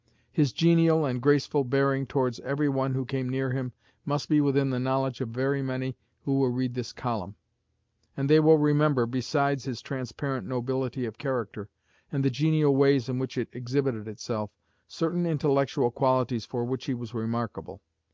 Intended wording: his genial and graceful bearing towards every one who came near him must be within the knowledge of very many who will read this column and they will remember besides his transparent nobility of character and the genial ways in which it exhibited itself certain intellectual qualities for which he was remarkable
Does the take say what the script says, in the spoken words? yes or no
yes